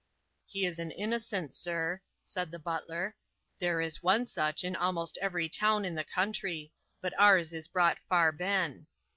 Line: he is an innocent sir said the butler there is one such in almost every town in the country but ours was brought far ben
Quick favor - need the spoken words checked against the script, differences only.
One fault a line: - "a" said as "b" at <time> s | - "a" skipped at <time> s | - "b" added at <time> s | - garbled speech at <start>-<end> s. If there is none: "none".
- "was" said as "is" at 7.5 s